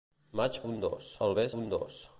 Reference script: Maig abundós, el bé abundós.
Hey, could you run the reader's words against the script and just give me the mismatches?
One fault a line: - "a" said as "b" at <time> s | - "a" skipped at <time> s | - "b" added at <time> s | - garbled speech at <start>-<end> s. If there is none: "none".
none